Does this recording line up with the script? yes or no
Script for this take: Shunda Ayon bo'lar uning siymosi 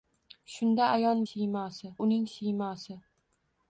no